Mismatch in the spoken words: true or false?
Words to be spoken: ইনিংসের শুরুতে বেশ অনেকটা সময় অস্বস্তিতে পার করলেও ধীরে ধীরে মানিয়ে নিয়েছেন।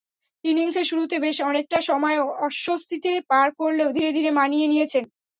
false